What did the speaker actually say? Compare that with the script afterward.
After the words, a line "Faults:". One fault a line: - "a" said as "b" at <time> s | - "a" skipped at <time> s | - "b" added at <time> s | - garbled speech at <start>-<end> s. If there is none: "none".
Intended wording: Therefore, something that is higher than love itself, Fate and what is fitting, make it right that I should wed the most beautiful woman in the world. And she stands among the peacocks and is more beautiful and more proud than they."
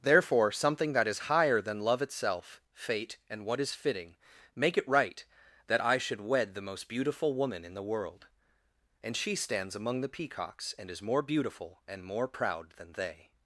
Therefore, something that is higher than love itself, Fate and what is fitting, make it right that I should wed the most beautiful woman in the world. And she stands among the peacocks and is more beautiful and more proud than they."
Faults:
none